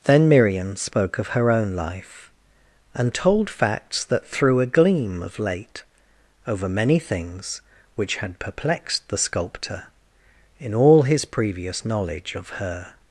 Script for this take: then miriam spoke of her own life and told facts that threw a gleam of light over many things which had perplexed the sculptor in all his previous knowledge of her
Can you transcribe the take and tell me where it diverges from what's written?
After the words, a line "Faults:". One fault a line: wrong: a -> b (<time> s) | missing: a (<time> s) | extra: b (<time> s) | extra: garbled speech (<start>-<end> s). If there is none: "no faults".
then miriam spoke of her own life and told facts that threw a gleam of late over many things which had perplexed the sculptor in all his previous knowledge of her
Faults:
wrong: light -> late (5.4 s)